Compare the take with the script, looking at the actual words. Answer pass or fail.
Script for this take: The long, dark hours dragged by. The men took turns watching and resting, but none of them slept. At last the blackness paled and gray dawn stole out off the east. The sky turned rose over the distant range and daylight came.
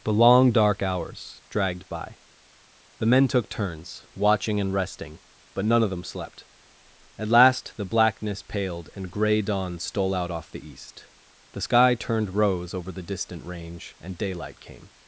pass